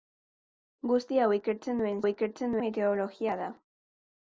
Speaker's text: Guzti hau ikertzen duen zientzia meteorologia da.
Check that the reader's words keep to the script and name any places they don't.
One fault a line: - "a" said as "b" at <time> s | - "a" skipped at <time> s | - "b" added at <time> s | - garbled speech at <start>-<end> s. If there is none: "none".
- "zientzia" said as "ikertzen" at 2.1 s